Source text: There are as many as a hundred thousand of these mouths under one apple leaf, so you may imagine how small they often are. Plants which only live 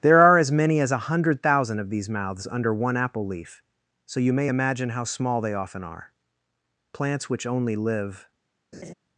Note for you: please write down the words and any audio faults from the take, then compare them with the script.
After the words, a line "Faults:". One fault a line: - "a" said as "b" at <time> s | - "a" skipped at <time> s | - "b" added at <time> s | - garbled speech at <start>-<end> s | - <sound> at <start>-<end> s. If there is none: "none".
There are as many as a hundred thousand of these mouths under one apple leaf, so you may imagine how small they often are. Plants which only live
Faults:
- laugh at 8.7-8.9 s